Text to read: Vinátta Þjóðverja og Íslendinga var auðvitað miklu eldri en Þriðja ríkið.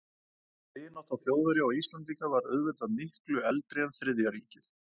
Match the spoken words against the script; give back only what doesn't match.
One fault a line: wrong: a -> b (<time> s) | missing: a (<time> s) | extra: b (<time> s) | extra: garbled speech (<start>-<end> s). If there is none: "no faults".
no faults